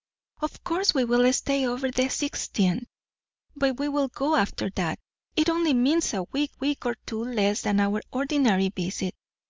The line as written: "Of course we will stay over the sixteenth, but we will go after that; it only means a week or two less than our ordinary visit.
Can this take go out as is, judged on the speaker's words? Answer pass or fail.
fail